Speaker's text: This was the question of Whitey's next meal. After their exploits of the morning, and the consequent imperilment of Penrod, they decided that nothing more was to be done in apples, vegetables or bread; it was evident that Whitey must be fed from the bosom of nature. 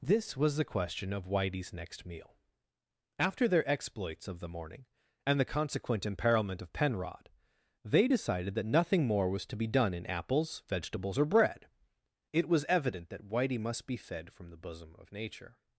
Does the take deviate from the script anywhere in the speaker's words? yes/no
no